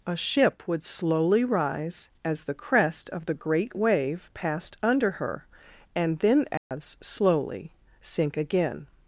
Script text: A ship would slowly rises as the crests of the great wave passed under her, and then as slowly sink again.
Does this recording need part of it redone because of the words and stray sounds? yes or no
yes